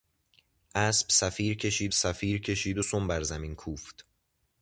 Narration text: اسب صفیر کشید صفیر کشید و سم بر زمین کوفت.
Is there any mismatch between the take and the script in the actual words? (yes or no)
no